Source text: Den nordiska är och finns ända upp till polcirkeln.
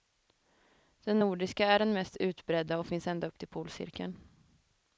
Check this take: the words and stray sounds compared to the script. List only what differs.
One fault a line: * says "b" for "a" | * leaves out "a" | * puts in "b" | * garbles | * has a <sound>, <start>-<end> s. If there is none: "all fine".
* puts in "den mest utbredda"